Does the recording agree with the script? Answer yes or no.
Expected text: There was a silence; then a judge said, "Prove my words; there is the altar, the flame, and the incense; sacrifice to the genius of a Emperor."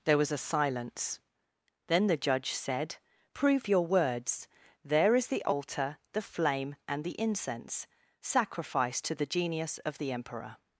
no